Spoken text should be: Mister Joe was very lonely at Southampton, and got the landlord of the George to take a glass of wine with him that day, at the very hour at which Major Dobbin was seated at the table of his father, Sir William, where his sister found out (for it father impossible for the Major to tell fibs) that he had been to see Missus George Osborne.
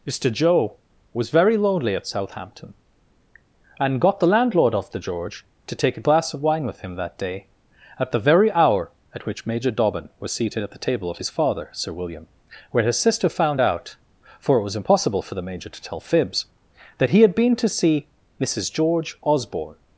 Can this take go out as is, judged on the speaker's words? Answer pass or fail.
fail